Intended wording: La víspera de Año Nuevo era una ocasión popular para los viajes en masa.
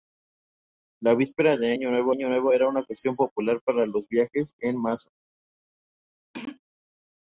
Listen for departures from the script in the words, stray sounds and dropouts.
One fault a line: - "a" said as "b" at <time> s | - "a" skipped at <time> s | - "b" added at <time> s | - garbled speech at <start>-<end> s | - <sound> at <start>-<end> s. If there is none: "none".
- "Año Nuevo" added at 2.1 s
- throat clearing at 6.3-6.6 s